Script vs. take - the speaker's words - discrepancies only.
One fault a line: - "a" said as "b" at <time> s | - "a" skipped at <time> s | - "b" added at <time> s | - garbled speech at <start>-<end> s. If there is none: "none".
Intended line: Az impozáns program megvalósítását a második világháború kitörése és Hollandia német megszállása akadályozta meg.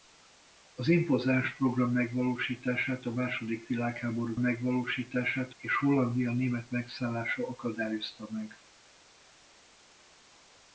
- "kitörése" said as "megvalósítását" at 4.4 s